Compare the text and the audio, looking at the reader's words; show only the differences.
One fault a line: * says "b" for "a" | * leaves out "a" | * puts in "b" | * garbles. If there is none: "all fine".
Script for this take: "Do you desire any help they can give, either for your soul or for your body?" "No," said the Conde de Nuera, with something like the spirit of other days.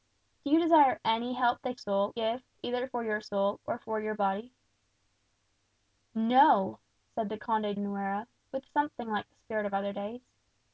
* says "soul" for "can"
* leaves out "de"